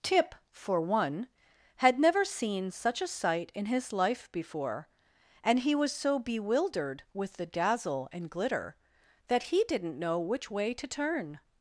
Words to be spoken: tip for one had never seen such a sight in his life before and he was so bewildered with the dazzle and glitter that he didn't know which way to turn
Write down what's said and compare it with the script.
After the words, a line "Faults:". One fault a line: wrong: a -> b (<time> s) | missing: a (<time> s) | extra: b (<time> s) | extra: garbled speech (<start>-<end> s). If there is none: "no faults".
tip for one had never seen such a sight in his life before and he was so bewildered with the dazzle and glitter that he didn't know which way to turn
Faults:
no faults